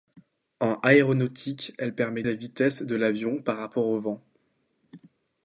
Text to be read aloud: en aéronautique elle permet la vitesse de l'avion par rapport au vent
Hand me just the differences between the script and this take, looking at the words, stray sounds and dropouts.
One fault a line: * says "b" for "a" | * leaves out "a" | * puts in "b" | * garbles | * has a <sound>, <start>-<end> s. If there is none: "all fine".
all fine